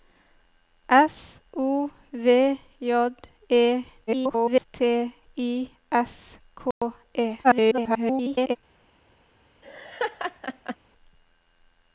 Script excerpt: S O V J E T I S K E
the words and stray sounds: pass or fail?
fail